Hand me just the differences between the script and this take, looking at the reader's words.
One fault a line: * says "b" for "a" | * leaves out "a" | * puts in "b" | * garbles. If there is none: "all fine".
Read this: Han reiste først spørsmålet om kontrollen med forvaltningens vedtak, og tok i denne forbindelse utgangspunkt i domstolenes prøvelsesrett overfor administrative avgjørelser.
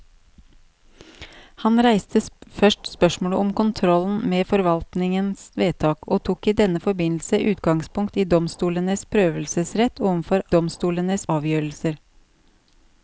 * says "domstolenes" for "administrative"